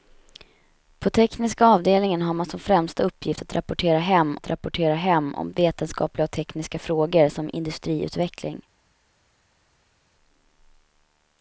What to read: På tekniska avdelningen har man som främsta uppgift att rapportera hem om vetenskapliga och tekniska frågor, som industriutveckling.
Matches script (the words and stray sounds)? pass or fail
fail